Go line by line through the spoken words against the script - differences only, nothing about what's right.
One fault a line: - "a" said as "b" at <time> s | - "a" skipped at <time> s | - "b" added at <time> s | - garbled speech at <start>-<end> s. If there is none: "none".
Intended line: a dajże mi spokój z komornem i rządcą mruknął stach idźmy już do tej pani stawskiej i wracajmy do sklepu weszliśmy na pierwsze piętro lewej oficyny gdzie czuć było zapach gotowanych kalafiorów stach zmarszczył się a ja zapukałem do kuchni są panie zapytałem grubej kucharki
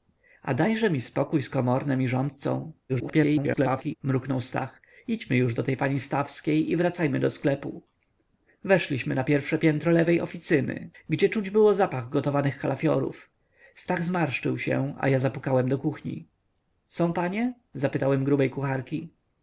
- garbled speech at 2.9-4.0 s